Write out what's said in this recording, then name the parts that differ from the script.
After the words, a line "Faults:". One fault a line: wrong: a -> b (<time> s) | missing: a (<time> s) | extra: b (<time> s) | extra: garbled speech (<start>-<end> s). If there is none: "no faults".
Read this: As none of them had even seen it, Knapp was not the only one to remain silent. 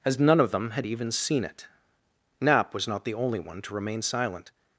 As none of them had even seen it, Knapp was not the only one to remain silent.
Faults:
no faults